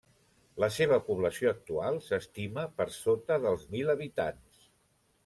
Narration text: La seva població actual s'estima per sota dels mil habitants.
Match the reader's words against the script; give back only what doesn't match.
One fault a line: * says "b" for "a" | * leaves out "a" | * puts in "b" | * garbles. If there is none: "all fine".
all fine